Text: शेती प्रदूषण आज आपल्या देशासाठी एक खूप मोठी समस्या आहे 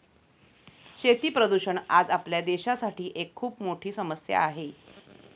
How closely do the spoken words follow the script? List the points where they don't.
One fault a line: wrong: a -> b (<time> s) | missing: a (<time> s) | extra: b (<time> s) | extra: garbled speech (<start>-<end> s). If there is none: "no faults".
no faults